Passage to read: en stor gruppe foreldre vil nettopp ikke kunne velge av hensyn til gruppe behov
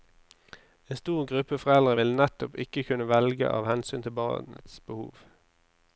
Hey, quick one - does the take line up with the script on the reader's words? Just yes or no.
no